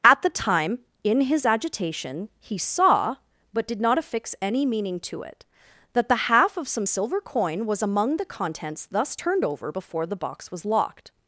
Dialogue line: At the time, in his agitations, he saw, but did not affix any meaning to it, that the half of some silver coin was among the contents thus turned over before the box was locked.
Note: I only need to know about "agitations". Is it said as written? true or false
false